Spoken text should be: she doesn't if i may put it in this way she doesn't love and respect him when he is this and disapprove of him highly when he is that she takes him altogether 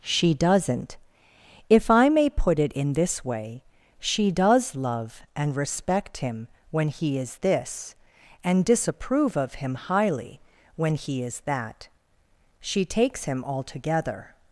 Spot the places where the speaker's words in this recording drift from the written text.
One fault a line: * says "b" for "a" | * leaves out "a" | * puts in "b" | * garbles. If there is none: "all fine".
* says "does" for "doesn't"